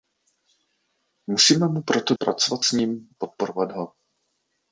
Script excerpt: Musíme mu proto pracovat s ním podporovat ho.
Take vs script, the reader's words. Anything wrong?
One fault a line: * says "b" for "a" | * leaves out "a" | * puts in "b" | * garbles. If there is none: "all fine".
all fine